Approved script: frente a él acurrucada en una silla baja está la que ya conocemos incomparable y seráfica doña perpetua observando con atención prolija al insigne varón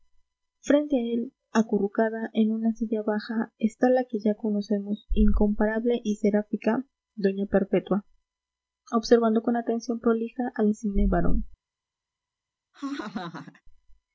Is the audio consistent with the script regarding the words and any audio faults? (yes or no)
no